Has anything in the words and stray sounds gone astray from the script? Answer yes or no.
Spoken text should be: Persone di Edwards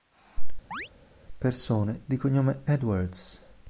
yes